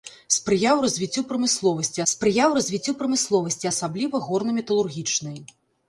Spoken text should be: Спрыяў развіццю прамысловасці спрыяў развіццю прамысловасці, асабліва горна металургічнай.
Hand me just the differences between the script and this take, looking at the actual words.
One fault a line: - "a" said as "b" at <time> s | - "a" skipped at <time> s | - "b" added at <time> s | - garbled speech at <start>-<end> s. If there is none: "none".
none